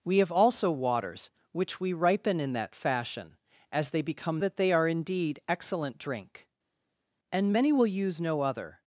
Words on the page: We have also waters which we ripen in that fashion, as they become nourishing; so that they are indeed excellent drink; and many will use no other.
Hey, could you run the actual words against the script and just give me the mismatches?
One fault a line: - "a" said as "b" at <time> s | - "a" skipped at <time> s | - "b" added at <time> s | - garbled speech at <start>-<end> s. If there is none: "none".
- "nourishing so" skipped at 4.4 s